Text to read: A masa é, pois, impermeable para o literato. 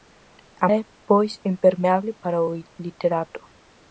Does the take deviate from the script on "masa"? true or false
true